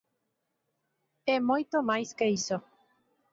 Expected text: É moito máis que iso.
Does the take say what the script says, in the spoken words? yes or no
yes